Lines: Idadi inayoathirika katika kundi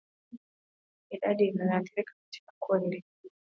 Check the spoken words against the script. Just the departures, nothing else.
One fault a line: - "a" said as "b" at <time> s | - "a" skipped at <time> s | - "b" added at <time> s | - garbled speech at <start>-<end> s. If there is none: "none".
none